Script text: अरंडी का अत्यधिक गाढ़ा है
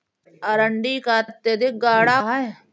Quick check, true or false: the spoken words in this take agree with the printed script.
true